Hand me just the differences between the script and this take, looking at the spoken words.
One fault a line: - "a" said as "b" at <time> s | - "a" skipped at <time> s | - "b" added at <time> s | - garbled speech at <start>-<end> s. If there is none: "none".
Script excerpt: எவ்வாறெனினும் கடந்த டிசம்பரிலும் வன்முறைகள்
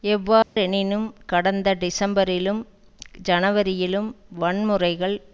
- "ஜனவரியிலும்" added at 3.2 s